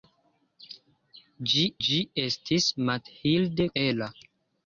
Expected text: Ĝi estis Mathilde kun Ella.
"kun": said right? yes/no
no